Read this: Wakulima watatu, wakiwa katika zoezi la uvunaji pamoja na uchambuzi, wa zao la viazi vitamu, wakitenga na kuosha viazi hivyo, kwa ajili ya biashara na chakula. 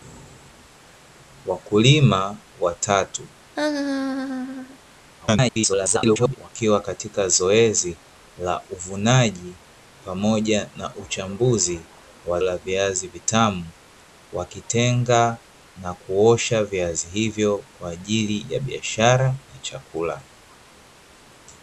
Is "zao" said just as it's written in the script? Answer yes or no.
no